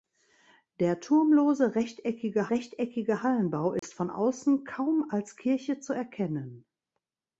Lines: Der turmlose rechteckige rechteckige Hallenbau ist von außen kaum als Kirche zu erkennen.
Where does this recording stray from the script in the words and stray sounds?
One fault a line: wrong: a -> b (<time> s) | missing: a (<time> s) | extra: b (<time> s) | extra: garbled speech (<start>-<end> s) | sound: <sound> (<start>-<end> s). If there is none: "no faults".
sound: dropout (3.8-3.8 s)